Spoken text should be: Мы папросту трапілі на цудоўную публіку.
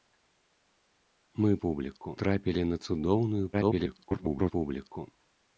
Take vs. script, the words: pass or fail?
fail